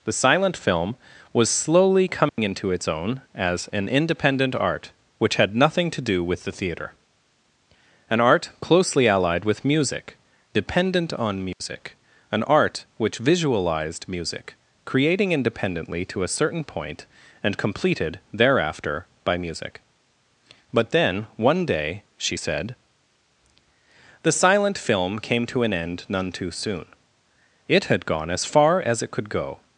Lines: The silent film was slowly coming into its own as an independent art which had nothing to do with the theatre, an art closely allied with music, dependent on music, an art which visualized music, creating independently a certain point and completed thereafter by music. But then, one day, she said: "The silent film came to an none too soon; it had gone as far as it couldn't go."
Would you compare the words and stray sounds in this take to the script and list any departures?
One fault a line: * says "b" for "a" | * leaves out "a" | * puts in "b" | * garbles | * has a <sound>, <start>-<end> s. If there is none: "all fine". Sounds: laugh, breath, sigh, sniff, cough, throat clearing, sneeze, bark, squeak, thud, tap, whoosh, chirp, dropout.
* has a dropout, 2.3-2.4 s
* has a dropout, 11.5-11.6 s
* puts in "to"
* puts in "end"
* says "could" for "couldn't"